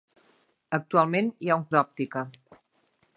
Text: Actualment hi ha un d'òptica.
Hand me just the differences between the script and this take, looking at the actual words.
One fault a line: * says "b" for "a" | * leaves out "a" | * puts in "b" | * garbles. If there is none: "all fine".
all fine